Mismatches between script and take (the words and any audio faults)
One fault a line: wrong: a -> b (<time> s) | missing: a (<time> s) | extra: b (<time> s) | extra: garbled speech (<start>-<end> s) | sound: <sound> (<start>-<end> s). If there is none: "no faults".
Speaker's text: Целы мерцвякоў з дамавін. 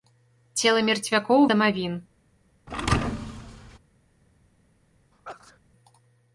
sound: thud (2.7-3.8 s)
sound: sneeze (5.1-5.6 s)